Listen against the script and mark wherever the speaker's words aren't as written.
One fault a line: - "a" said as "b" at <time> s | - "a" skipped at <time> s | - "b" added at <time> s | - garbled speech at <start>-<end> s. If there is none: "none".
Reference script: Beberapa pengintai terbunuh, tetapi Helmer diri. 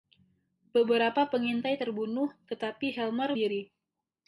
none